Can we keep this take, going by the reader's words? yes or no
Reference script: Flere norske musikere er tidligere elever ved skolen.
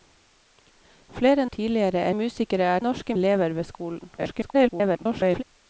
no